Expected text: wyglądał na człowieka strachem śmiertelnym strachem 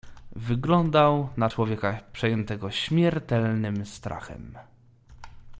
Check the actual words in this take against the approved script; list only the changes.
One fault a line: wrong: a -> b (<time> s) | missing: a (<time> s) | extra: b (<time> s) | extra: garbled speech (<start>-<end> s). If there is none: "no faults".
wrong: strachem -> przejętego (2.1 s)